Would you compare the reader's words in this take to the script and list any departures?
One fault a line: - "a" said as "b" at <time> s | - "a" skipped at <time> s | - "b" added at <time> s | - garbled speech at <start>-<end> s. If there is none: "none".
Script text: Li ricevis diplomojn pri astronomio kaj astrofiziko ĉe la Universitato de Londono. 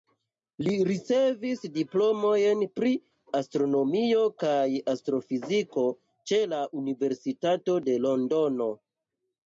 none